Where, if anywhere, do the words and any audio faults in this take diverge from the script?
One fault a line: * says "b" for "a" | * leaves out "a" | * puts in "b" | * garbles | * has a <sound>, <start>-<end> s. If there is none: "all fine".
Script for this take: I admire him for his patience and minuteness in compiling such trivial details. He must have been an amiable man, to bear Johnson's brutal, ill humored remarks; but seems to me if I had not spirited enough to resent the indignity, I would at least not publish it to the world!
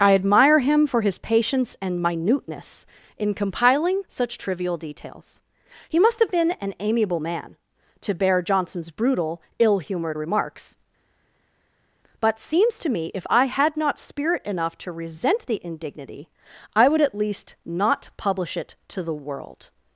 * says "spirit" for "spirited"